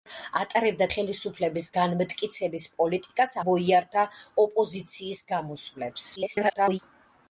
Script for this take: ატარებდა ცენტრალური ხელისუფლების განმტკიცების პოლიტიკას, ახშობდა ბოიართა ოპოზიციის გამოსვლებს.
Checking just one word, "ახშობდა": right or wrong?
wrong